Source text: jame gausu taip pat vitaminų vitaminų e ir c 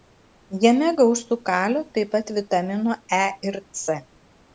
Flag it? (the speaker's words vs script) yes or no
yes